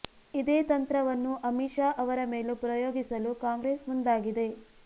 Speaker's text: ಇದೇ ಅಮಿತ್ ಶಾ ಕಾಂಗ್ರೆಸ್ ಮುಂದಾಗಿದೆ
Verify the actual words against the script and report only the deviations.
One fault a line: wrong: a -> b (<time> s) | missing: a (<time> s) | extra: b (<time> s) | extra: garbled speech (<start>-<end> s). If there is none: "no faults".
extra: ತಂತ್ರವನ್ನು (0.7 s)
extra: ಅವರ ಮೇಲೂ ಪ್ರಯೋಗಿಸಲು (2.0 s)